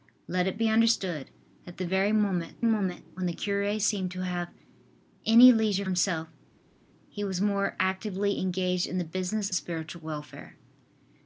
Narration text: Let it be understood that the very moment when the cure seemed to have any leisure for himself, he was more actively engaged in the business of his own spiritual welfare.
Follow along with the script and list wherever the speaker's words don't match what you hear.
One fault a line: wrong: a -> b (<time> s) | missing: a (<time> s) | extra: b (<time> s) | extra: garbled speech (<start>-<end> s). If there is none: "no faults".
extra: moment (2.6 s)
missing: for (5.8 s)
missing: of his own (9.5 s)